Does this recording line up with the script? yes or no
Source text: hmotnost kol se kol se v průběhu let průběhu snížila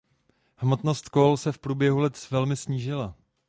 no